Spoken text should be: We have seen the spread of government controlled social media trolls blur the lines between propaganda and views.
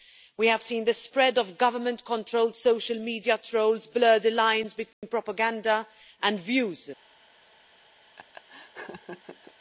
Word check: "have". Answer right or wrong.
right